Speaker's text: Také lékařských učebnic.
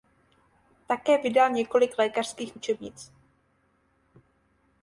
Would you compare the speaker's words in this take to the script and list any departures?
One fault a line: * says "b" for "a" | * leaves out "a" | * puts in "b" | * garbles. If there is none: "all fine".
* puts in "vydal několik"